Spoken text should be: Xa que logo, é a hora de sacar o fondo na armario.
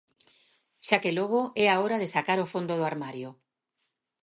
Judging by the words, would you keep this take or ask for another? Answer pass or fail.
fail